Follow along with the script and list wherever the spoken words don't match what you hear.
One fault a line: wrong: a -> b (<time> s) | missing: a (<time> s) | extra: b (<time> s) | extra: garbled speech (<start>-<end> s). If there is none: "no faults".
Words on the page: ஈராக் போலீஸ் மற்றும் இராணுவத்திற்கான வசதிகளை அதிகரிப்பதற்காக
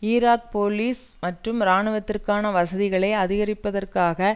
no faults